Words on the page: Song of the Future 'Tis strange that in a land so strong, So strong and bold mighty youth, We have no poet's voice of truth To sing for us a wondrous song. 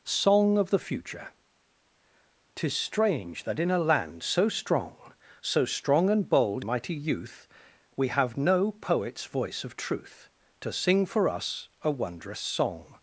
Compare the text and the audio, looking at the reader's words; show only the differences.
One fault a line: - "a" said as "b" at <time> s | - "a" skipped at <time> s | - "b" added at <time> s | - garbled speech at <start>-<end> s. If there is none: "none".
none